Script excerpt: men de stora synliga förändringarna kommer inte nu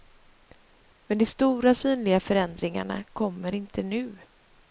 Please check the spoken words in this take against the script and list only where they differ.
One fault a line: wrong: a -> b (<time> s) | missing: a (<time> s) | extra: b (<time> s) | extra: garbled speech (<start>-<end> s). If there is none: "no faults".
no faults